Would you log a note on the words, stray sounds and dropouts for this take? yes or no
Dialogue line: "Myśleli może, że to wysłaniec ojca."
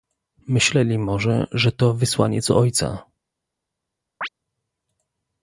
yes